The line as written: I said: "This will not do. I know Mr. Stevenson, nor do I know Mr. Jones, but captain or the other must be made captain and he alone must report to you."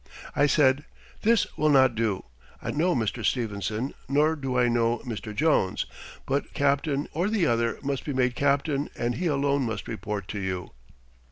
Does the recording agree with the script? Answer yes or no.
yes